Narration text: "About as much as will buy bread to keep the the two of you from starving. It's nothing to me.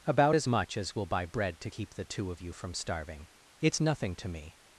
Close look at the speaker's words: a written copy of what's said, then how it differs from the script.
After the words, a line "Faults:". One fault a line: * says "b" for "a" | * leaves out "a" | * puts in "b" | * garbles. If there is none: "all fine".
"About as much as will buy bread to keep the two of you from starving. It's nothing to me.
Faults:
* leaves out "the"